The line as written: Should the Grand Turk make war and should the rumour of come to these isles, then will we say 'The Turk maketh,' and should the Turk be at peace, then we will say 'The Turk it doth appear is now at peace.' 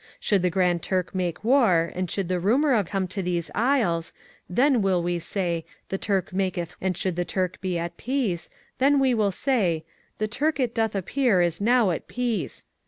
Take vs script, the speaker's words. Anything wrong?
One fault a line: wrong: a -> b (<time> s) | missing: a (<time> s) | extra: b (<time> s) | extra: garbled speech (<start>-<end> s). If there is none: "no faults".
no faults